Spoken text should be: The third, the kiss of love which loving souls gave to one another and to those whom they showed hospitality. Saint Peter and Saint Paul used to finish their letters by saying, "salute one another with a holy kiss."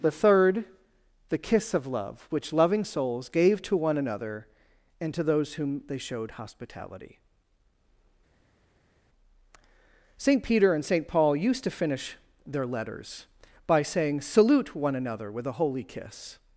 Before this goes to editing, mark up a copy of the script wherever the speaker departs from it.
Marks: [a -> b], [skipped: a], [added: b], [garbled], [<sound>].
The third, the kiss of love which loving souls gave to one another and to those whom they showed hospitality. Saint Peter and Saint Paul used to finish their letters by saying, "salute one another with a holy kiss."